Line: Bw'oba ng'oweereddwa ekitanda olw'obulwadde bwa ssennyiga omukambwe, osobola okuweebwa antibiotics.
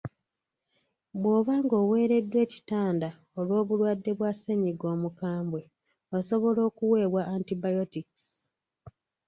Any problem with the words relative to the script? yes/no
no